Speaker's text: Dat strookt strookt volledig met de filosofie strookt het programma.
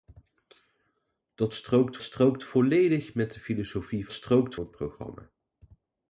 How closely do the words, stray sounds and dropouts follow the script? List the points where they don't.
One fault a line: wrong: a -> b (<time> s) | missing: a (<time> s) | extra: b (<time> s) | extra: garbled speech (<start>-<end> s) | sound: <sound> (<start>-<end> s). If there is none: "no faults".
no faults